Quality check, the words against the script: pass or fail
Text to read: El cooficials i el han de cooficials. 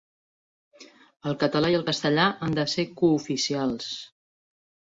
fail